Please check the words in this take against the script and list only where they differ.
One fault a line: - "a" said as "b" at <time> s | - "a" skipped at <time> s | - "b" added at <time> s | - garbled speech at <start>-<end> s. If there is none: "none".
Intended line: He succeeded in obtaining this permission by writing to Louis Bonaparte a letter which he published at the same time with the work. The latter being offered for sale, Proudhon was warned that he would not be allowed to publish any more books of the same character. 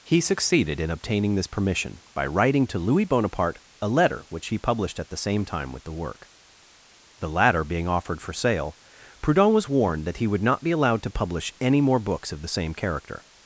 none